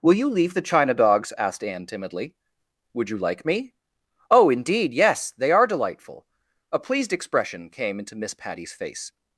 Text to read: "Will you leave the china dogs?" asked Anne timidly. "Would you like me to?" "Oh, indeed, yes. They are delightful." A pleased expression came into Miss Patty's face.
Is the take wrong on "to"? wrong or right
wrong